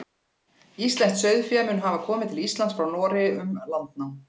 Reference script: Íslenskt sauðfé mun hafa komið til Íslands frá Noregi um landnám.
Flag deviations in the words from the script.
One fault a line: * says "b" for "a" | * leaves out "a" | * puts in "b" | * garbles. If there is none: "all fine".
all fine